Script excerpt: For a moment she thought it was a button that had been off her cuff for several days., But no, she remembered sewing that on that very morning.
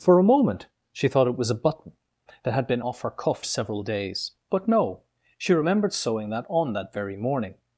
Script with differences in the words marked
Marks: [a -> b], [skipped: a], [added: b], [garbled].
For a moment she thought it was a button that had been off her cuff [skipped: for] several days., But no, she remembered sewing that on that very morning.